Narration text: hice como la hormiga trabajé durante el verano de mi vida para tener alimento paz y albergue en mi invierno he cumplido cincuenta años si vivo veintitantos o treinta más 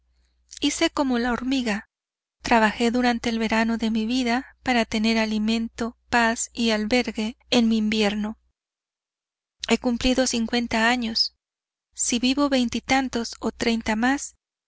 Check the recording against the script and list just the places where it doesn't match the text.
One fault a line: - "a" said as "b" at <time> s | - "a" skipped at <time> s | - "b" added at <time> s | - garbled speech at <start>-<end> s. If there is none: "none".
none